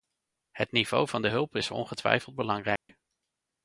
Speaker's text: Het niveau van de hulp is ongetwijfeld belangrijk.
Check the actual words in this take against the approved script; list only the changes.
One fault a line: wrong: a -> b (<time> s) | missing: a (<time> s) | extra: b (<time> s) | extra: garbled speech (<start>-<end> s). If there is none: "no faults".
no faults